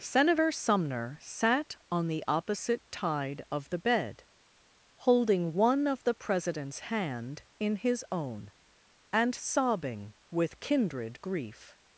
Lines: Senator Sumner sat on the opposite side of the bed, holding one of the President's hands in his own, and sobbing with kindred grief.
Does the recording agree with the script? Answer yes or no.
no